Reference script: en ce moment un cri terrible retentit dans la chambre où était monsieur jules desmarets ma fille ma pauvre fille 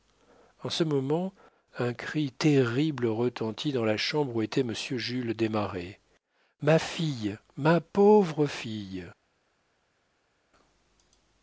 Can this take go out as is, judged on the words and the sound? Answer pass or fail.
pass